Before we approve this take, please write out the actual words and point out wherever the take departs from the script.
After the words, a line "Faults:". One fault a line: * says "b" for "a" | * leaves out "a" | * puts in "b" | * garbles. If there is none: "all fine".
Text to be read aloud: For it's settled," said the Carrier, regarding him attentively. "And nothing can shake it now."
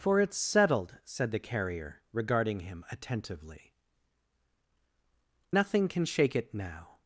For it's settled," said the Carrier, regarding him attentively. "Nothing can shake it now."
Faults:
* leaves out "And"